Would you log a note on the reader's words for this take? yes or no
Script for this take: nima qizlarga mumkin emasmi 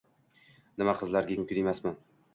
no